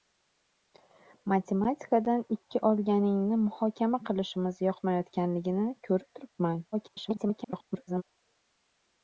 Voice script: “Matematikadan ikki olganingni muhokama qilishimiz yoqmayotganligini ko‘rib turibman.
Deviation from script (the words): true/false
true